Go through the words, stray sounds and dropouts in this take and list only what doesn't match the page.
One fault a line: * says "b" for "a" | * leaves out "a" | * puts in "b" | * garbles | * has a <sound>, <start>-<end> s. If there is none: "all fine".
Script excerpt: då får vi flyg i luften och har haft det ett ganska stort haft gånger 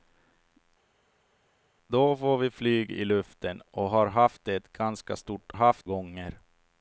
all fine